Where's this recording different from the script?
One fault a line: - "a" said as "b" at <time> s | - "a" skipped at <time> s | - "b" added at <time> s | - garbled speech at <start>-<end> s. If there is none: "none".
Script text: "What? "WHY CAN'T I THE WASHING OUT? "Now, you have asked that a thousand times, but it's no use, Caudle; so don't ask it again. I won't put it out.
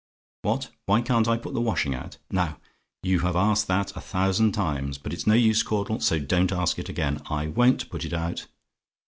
- "PUT" added at 1.4 s